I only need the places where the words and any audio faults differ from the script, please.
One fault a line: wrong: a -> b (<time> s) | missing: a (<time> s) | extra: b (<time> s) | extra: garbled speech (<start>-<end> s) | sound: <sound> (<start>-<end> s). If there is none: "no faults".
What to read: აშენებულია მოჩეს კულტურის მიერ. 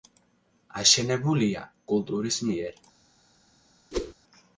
missing: მოჩეს (1.6 s)
sound: whoosh (3.9-4.1 s)